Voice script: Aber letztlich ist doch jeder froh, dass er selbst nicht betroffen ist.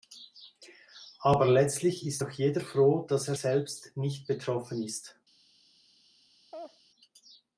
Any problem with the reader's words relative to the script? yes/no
no